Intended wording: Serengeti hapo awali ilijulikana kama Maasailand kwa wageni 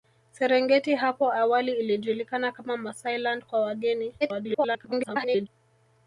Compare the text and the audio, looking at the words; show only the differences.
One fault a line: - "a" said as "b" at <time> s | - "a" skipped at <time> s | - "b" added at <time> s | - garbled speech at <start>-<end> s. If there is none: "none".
- garbled speech at 4.2-5.5 s